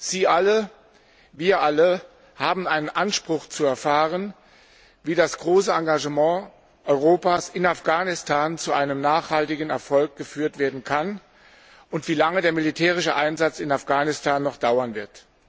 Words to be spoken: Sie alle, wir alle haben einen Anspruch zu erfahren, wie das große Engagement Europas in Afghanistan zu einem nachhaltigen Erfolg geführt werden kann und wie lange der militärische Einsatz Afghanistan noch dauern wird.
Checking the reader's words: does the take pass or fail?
fail